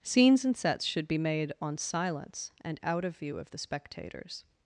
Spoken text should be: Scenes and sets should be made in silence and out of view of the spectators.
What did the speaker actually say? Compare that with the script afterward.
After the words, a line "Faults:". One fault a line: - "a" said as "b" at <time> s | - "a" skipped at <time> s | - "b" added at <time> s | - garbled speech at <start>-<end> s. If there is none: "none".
Scenes and sets should be made on silence and out of view of the spectators.
Faults:
- "in" said as "on" at 1.6 s